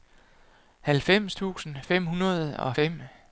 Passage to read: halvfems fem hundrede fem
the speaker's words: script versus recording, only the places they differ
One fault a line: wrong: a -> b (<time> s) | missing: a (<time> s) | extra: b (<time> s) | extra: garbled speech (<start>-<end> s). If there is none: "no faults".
extra: tusind (1.3 s)
extra: og (2.6 s)